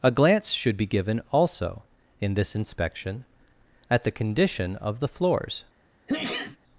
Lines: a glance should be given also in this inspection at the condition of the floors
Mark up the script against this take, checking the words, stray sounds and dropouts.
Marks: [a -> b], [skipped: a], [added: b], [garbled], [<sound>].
a glance should be given also in this inspection at the condition of the floors [sneeze]